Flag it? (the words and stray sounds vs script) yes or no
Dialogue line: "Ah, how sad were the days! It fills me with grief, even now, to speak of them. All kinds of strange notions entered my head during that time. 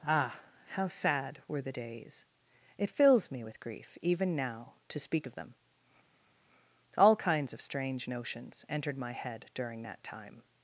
no